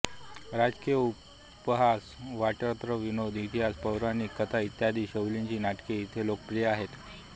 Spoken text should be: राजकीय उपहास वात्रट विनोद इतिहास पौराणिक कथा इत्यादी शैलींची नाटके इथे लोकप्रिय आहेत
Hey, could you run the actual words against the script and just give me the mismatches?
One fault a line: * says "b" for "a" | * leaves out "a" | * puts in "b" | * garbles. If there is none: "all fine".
all fine